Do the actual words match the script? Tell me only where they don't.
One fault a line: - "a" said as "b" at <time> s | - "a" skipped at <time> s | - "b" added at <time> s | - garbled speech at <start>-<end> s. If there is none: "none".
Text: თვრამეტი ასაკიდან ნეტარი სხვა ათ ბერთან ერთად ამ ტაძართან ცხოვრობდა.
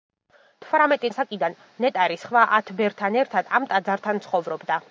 none